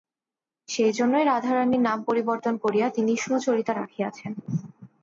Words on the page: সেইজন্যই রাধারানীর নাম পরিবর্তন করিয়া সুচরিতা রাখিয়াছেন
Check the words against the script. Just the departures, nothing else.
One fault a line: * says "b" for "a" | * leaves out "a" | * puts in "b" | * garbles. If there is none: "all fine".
* puts in "তিনি"